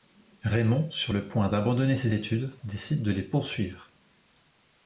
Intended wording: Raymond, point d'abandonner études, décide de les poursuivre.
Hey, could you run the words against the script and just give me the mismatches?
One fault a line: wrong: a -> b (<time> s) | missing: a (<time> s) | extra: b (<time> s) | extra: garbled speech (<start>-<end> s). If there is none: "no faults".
extra: sur le (0.9 s)
extra: ses (2.0 s)